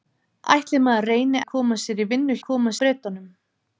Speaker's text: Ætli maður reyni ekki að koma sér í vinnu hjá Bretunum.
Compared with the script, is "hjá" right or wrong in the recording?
wrong